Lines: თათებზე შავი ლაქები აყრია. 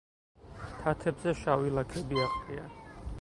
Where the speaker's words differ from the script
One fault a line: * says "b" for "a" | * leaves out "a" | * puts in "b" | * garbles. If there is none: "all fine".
all fine